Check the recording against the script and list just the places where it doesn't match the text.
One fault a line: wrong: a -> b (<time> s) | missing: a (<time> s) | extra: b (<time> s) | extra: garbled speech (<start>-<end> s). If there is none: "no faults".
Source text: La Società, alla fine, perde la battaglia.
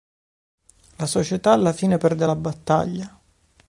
no faults